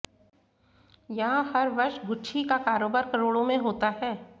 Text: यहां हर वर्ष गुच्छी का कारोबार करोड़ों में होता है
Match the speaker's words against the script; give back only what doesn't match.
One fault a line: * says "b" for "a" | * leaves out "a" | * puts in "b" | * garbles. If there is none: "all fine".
all fine